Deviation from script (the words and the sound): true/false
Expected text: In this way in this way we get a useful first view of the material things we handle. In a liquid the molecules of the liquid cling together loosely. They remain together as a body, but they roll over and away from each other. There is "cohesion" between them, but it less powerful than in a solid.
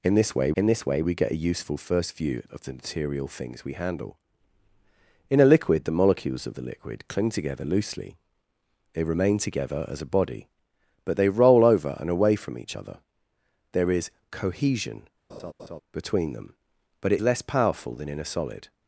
true